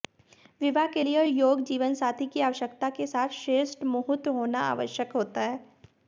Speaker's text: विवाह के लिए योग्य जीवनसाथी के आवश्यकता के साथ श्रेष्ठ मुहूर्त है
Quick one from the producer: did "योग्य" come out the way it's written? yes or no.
yes